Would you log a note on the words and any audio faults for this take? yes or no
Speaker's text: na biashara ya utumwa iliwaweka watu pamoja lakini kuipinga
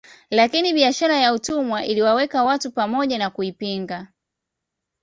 yes